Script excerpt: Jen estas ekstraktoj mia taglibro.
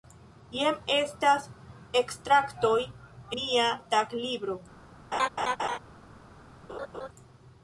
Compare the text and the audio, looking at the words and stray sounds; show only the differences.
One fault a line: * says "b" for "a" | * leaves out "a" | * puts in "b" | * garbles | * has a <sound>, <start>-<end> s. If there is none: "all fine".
* has a laugh, 5.1-5.8 s
* has a laugh, 6.7-7.1 s